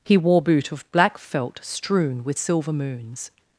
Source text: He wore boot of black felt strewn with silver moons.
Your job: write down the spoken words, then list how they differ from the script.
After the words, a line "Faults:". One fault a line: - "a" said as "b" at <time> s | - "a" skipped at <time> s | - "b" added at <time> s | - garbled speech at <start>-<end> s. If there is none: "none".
He wore boot of black felt strewn with silver moons.
Faults:
none